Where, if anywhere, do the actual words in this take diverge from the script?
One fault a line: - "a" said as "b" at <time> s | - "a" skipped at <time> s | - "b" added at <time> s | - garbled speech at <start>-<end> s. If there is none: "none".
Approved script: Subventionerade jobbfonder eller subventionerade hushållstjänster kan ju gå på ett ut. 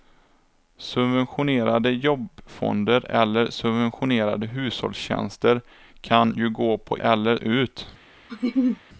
- "ett" said as "eller" at 7.0 s